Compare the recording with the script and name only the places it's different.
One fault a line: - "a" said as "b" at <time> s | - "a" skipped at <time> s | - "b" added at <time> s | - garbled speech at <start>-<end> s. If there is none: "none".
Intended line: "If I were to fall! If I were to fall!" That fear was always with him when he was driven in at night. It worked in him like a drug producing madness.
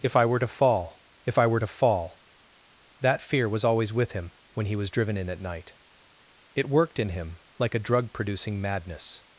none